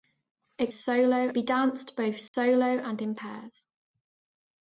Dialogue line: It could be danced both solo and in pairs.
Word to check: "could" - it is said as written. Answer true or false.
false